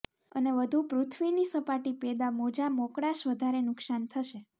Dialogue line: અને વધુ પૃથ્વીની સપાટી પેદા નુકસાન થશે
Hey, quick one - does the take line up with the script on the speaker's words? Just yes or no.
no